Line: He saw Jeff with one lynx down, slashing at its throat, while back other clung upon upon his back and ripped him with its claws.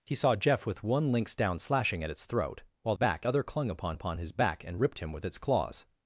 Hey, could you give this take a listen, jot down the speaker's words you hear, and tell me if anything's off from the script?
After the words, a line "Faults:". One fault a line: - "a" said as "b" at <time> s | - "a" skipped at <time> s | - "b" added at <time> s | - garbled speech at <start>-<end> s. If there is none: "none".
He saw Jeff with one lynx down, slashing at its throat, while back other clung upon upon his back and ripped him with its claws.
Faults:
none